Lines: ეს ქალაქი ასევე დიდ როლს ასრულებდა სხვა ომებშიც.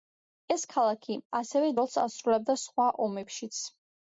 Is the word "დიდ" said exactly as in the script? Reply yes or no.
no